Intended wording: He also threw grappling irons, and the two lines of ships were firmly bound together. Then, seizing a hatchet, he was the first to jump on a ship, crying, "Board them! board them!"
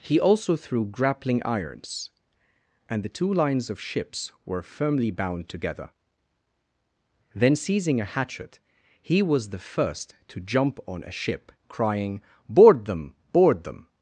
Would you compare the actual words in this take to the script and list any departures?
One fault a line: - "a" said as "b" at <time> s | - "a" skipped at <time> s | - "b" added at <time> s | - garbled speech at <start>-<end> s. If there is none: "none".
none